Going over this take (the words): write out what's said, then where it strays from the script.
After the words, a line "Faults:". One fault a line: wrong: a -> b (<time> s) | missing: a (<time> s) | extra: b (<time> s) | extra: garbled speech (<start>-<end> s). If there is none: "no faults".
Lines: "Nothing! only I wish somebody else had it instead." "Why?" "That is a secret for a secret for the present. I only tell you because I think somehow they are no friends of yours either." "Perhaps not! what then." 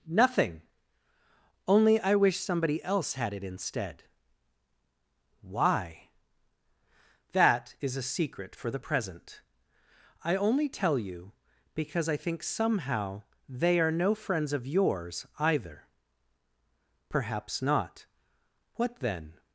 "Nothing! only I wish somebody else had it instead." "Why?" "That is a secret for the present. I only tell you because I think somehow they are no friends of yours either." "Perhaps not! what then."
Faults:
missing: a secret for (8.7 s)